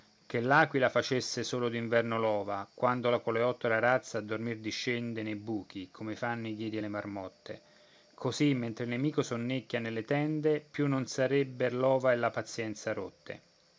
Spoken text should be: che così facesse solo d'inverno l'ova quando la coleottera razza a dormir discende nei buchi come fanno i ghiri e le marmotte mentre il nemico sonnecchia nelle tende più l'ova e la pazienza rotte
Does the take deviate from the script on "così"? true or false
true